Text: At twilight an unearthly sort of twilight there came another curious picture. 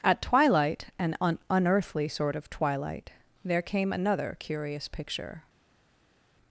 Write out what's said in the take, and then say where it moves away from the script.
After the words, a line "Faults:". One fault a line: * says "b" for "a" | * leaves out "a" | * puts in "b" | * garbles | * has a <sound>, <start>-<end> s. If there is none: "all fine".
At twilight an un unearthly sort of twilight there came another curious picture.
Faults:
* puts in "un"